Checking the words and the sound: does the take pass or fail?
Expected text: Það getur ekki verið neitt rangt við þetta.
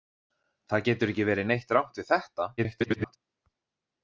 fail